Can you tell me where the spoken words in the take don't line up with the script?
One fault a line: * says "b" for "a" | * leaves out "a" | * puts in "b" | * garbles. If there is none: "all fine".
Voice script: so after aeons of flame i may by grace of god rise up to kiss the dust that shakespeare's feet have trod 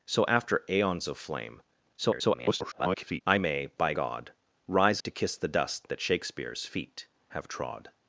* garbles
* leaves out "grace of"
* leaves out "up"